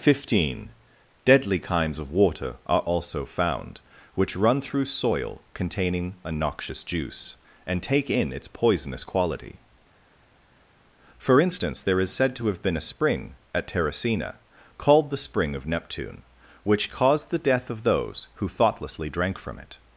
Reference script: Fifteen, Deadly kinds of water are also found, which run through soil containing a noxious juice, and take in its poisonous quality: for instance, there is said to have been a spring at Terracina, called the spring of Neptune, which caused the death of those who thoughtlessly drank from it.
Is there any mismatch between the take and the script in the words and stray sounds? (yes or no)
no